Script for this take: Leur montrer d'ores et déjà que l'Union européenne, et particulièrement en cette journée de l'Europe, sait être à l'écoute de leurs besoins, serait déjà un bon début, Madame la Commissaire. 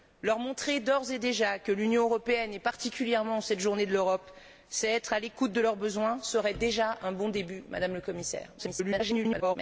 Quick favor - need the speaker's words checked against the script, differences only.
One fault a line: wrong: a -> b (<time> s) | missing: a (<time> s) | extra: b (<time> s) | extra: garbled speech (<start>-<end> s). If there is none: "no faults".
extra: garbled speech (8.6-9.6 s)